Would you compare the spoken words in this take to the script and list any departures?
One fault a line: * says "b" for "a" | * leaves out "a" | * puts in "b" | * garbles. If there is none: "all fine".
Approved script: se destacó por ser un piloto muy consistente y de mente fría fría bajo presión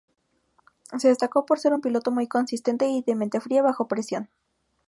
* leaves out "fría"